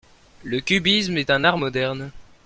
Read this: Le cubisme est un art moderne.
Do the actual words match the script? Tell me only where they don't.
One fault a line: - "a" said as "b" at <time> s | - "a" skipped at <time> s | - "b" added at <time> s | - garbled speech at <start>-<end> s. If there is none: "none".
none